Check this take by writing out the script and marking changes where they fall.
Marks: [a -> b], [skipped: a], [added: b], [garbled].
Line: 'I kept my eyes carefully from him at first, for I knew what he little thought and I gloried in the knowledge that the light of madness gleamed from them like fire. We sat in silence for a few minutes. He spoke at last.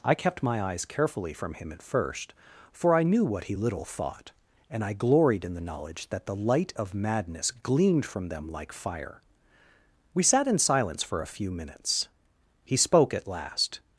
'I kept my eyes carefully from him at first, for I knew what he little thought and I gloried in the knowledge that the light of madness gleamed from them like fire. We sat in silence for a few minutes. He spoke at last.